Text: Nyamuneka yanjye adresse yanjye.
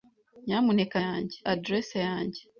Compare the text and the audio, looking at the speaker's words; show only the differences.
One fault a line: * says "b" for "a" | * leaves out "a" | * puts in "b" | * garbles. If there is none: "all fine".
all fine